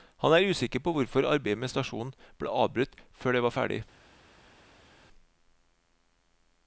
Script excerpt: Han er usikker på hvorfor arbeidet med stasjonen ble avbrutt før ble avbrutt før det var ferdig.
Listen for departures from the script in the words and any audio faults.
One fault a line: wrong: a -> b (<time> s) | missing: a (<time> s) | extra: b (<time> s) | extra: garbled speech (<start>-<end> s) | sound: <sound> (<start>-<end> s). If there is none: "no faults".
missing: ble avbrutt før (3.4 s)